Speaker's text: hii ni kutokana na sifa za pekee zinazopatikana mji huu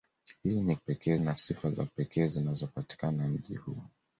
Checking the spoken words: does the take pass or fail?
fail